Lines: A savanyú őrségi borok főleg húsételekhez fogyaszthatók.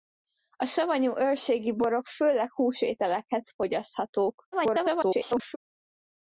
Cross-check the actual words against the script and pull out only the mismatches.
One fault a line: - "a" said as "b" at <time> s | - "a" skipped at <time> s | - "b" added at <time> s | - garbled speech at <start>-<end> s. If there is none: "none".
- garbled speech at 4.5-5.6 s